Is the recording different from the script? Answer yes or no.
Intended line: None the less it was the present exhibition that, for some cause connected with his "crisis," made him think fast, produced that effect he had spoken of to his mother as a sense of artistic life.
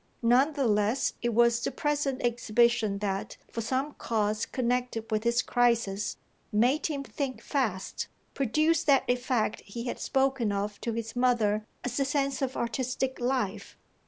no